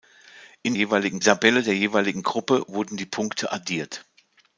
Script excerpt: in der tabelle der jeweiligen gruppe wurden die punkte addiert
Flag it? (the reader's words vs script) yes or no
yes